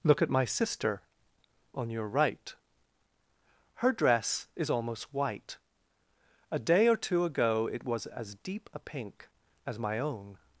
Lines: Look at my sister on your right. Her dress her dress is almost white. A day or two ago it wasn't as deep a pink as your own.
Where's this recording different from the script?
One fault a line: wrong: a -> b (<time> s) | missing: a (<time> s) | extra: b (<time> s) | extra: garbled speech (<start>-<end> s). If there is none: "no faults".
missing: her dress (4.5 s)
wrong: wasn't -> was (7.8 s)
wrong: your -> my (9.8 s)